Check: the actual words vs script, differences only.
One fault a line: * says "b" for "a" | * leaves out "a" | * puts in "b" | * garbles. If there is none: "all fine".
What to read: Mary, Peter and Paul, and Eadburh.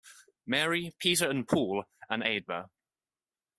all fine